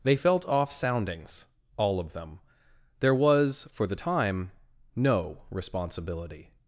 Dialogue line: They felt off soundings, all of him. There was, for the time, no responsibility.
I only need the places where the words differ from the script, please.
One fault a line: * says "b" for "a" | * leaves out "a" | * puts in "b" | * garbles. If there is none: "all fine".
* says "them" for "him"